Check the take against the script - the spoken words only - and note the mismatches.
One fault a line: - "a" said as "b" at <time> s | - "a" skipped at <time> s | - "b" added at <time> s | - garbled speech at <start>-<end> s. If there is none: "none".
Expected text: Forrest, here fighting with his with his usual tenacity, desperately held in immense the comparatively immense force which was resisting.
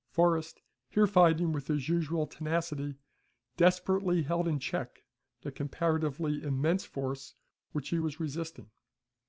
- "with his" skipped at 1.9 s
- "immense" said as "check" at 4.6 s
- "he" added at 7.9 s